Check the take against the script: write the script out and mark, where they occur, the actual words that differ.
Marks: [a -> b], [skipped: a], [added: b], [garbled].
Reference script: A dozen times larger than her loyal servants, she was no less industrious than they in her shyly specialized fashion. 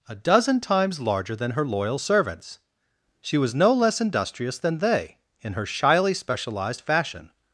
A dozen times larger than her loyal servants, she was no less industrious than they in her shyly specialized fashion.